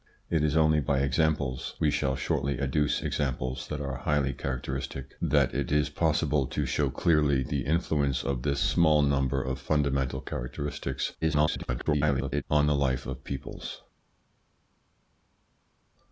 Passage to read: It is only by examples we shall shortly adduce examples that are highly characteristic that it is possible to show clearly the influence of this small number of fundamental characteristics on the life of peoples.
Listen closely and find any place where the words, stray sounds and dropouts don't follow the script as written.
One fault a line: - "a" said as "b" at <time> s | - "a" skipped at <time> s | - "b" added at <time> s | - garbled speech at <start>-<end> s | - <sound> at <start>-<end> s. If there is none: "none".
- garbled speech at 11.2-12.4 s